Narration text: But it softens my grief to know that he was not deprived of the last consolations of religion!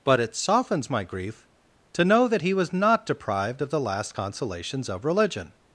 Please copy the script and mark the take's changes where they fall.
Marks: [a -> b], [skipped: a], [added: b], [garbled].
But it softens my grief to know that he was not deprived of the last consolations of religion!